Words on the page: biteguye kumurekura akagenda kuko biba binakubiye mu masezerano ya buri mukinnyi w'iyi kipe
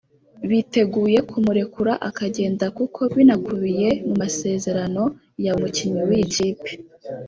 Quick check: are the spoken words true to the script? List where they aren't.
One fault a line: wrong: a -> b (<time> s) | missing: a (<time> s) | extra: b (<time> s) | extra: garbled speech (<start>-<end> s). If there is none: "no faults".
missing: biba (3.0 s)
missing: buri (5.5 s)